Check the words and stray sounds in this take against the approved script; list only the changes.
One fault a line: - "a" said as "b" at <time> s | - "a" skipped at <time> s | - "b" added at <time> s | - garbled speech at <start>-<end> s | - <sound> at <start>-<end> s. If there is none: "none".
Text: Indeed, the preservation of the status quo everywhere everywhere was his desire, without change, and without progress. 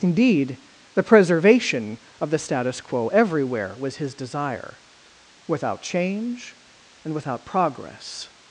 - "everywhere" skipped at 3.8 s